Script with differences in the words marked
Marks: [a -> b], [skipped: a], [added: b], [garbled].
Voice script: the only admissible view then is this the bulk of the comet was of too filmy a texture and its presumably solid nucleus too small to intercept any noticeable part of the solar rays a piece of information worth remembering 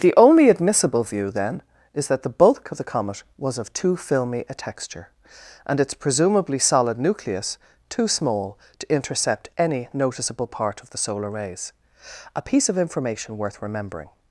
the only admissible view then is [this -> that] the bulk of the comet was of too filmy a texture and its presumably solid nucleus too small to intercept any noticeable part of the solar rays a piece of information worth remembering